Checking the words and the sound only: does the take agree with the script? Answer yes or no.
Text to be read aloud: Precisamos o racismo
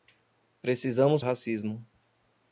yes